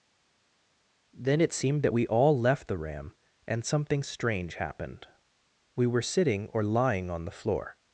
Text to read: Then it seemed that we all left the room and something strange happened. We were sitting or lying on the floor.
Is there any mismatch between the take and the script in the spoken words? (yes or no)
yes